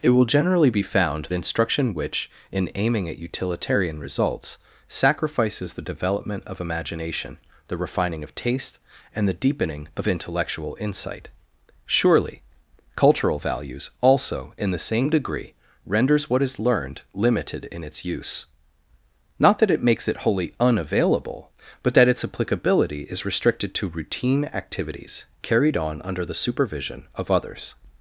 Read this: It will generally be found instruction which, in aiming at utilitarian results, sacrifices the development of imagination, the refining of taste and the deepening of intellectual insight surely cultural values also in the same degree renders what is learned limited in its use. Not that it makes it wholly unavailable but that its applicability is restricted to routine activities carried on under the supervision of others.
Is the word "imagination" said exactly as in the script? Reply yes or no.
yes